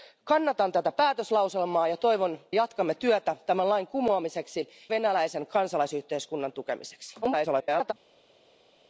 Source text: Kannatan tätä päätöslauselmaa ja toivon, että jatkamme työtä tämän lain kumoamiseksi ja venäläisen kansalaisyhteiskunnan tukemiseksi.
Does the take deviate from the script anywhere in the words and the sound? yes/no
yes